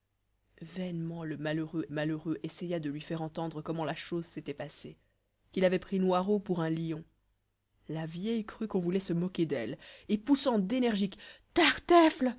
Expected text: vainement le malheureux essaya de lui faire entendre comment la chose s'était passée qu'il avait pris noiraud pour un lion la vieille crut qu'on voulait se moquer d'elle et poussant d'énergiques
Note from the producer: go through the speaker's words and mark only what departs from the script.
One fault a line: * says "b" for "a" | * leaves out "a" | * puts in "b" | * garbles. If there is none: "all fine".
* puts in "malheureux"